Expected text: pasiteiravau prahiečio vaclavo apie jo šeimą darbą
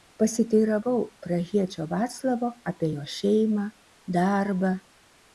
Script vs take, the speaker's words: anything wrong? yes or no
no